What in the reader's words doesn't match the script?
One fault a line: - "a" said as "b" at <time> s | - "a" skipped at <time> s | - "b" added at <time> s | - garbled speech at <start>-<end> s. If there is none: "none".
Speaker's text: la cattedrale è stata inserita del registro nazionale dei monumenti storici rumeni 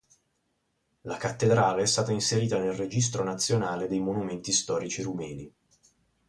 - "del" said as "nel" at 2.6 s